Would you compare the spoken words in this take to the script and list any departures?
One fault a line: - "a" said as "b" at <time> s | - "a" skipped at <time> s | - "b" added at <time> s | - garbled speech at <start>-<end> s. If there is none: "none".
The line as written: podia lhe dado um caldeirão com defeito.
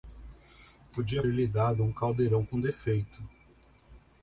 none